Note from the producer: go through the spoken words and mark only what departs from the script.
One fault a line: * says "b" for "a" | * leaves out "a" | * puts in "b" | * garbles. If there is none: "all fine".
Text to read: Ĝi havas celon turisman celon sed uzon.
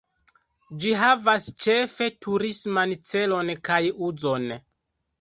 * says "ĉefe" for "celon"
* says "kaj" for "sed"